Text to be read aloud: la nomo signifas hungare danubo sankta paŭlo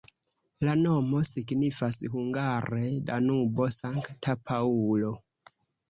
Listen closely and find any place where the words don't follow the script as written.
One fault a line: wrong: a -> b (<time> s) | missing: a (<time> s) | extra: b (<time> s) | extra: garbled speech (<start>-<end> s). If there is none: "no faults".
no faults